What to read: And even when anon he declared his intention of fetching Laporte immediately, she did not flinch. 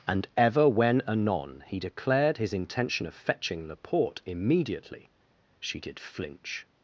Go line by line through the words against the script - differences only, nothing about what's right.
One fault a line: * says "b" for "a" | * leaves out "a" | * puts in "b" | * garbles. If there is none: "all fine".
* says "ever" for "even"
* leaves out "not"